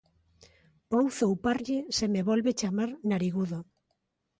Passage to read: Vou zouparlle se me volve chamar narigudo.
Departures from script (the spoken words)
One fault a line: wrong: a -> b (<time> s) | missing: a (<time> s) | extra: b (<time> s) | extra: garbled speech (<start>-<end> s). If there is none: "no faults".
no faults